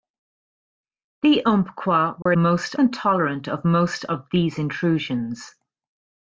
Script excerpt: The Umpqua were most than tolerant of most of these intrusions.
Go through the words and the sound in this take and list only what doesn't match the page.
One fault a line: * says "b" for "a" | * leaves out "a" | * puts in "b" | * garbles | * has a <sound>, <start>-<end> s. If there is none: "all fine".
* has a dropout, 2.2-2.3 s